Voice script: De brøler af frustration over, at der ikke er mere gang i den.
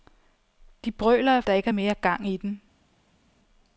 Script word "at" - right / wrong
wrong